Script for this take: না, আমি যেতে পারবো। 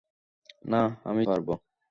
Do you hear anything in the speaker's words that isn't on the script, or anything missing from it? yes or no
yes